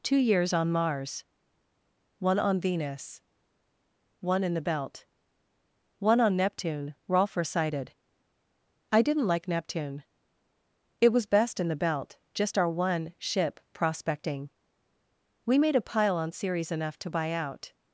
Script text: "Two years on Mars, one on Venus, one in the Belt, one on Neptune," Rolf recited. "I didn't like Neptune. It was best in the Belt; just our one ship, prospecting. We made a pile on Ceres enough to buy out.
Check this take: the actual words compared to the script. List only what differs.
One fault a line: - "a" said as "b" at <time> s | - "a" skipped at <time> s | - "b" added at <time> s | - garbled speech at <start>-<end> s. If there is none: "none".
none